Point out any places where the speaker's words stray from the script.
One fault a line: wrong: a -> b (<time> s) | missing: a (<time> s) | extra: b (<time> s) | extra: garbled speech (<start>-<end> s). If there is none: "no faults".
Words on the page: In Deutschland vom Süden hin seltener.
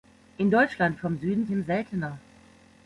no faults